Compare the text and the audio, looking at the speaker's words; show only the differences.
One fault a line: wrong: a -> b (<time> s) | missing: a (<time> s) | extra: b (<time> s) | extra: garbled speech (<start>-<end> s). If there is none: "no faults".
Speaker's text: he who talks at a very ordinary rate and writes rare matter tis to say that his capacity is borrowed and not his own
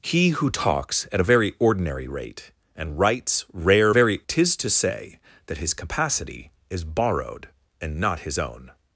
wrong: matter -> very (3.9 s)